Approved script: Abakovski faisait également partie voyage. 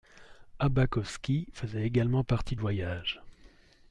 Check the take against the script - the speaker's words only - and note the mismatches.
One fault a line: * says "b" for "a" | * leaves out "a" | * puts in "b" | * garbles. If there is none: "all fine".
all fine